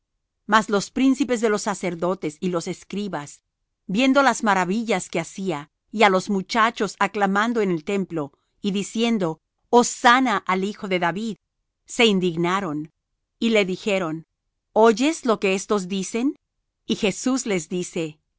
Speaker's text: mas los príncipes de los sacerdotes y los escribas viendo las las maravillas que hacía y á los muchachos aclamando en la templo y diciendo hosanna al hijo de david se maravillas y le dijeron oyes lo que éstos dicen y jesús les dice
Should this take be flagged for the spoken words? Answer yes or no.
yes